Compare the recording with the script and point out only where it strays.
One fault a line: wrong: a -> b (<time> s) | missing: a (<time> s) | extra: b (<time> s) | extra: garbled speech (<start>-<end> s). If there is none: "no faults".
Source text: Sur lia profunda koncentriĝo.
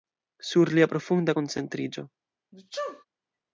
no faults